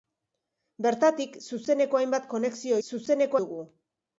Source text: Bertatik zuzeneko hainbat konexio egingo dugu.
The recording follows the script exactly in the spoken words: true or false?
false